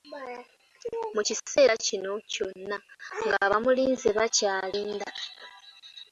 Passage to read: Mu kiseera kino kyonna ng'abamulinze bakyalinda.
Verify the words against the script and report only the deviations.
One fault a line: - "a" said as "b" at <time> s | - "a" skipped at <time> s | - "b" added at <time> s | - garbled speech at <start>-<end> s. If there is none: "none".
none